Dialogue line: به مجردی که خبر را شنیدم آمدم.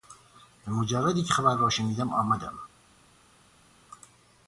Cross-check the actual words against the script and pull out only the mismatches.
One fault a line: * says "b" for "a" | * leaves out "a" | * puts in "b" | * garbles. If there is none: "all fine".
all fine